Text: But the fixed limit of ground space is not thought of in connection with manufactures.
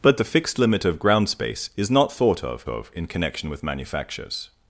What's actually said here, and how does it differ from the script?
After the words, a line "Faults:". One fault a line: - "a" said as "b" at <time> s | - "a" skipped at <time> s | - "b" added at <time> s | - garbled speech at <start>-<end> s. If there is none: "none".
But the fixed limit of ground space is not thought of of in connection with manufactures.
Faults:
- "of" added at 2.7 s